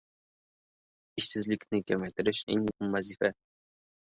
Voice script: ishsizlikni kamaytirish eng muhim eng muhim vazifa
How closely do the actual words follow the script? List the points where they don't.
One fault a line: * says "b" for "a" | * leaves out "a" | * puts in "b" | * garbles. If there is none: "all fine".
* leaves out "eng muhim"